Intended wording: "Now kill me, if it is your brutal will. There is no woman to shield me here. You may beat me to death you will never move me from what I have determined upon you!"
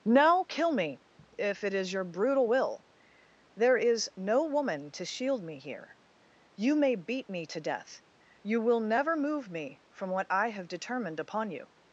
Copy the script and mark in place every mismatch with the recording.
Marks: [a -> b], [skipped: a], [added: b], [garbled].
"Now kill me, if it is your brutal will. There is no woman to shield me here. You may beat me to death you will never move me from what I have determined upon you!"